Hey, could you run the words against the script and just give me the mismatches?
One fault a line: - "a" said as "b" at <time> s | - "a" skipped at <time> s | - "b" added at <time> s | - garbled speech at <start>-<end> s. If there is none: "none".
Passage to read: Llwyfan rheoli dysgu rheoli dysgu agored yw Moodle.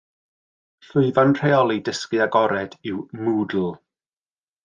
- "rheoli dysgu" skipped at 2.2 s